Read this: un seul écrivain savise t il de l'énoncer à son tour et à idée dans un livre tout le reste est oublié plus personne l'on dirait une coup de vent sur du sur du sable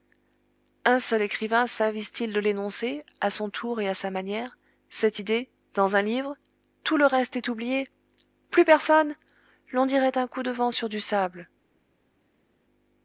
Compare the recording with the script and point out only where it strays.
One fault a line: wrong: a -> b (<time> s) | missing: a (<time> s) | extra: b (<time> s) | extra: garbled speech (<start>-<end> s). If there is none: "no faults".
extra: sa manière cette (3.9 s)
wrong: une -> un (10.2 s)
missing: sur du (11.0 s)